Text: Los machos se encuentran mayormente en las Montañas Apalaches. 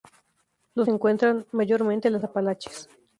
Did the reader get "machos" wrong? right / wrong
wrong